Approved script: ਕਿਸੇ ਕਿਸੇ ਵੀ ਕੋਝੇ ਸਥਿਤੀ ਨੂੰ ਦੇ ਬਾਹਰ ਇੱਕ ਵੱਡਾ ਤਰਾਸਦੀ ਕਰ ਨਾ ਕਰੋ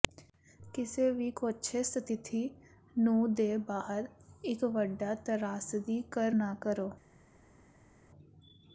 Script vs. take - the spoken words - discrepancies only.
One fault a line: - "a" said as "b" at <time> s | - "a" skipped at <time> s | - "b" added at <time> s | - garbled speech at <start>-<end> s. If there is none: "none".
- "ਕਿਸੇ" skipped at 1.1 s